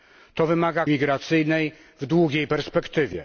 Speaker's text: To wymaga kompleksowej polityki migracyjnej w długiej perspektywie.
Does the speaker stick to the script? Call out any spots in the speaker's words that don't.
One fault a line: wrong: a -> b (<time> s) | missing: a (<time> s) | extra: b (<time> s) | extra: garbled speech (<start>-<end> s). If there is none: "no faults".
missing: kompleksowej polityki (0.9 s)